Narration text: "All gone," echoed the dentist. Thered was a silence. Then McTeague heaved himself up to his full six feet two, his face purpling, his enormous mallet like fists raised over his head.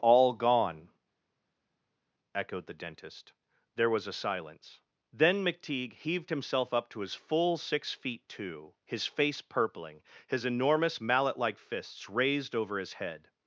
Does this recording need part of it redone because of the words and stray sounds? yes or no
yes